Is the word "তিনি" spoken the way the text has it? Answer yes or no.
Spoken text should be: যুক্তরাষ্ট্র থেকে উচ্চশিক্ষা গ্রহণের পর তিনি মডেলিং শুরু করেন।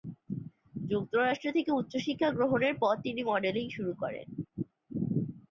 yes